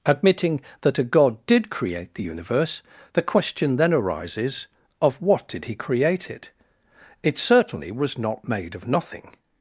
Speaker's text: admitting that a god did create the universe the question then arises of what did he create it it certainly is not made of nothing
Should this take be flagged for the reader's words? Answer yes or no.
yes